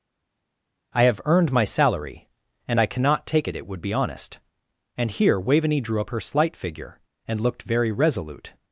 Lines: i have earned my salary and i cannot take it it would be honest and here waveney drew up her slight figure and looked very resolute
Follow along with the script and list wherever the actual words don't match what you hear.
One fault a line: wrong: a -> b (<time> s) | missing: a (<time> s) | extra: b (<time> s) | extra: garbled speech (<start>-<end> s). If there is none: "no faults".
no faults